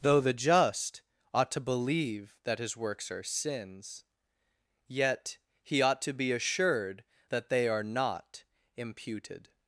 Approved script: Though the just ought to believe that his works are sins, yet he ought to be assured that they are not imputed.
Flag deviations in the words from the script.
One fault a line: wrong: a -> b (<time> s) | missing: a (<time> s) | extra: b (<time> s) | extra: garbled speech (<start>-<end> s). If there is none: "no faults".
no faults